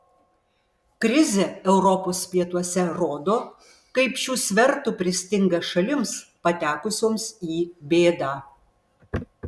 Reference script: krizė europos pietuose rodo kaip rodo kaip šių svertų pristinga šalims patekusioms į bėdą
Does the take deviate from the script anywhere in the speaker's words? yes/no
yes